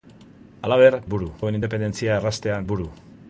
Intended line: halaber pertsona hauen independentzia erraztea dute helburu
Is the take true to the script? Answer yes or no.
no